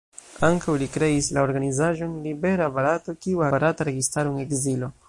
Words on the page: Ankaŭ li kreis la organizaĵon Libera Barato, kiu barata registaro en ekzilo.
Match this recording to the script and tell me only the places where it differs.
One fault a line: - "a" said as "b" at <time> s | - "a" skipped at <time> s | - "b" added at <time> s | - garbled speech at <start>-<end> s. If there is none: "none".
none